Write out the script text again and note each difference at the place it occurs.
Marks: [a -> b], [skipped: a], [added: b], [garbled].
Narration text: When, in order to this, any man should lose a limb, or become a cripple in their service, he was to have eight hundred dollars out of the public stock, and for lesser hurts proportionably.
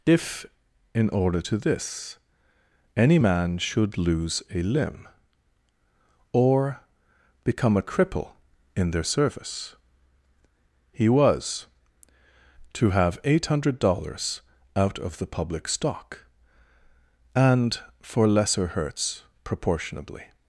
[When, -> If] in order to this, any man should lose a limb, or become a cripple in their service, he was to have eight hundred dollars out of the public stock, and for lesser hurts proportionably.